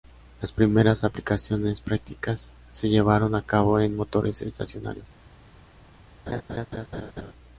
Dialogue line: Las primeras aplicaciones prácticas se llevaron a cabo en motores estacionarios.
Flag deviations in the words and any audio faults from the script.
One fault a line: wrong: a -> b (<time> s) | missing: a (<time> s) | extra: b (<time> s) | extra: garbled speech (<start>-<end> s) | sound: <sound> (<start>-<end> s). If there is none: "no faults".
sound: laugh (6.3-7.3 s)